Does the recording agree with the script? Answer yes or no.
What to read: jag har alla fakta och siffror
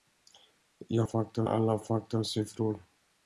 no